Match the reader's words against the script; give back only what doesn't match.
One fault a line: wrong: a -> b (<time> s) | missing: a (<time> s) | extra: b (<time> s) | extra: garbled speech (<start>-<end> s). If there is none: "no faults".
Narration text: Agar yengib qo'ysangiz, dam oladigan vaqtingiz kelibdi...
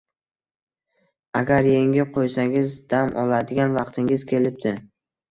no faults